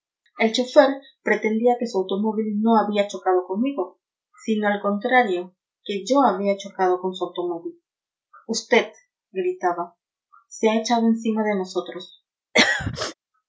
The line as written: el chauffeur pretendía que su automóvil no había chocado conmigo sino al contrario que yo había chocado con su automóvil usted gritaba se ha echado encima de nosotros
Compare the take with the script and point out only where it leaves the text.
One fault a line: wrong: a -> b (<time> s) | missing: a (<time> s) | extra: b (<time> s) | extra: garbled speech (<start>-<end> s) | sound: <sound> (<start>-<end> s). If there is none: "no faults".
sound: throat clearing (12.5-13.1 s)